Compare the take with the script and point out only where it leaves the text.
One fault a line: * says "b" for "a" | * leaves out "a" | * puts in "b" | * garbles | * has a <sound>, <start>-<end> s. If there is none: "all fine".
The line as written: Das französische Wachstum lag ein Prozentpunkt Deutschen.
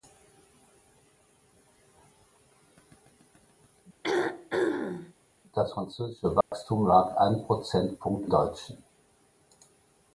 * has a throat clearing, 4.0-5.1 s
* has a dropout, 6.4-6.5 s